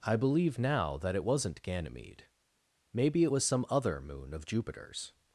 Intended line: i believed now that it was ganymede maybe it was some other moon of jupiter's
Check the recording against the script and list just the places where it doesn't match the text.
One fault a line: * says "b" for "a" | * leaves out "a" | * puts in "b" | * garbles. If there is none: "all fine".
* says "believe" for "believed"
* says "wasn't" for "was"